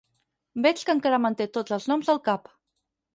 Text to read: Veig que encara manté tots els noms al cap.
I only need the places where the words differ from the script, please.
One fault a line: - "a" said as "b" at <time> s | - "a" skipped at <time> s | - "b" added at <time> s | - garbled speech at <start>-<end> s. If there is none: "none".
none